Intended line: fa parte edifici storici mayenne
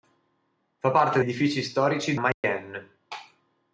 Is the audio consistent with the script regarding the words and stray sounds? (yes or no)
no